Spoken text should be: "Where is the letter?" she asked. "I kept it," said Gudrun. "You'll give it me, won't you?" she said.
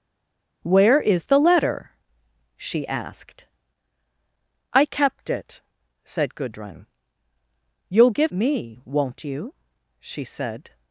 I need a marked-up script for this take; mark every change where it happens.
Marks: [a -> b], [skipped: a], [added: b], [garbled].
"Where is the letter?" she asked. "I kept it," said Gudrun. "You'll give [skipped: it] me, won't you?" she said.